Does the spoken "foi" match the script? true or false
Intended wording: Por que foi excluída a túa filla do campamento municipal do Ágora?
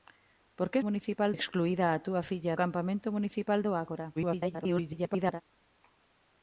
false